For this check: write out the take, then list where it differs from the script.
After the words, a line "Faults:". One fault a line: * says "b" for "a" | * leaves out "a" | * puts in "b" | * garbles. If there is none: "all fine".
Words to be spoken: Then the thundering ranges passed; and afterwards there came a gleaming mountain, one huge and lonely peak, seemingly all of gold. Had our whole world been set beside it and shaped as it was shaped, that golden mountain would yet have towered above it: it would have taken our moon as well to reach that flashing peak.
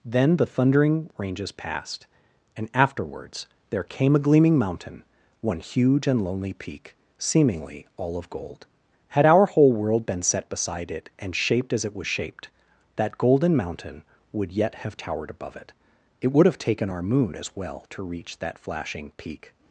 Then the thundering ranges passed; and afterwards there came a gleaming mountain, one huge and lonely peak, seemingly all of gold. Had our whole world been set beside it and shaped as it was shaped, that golden mountain would yet have towered above it: it would have taken our moon as well to reach that flashing peak.
Faults:
all fine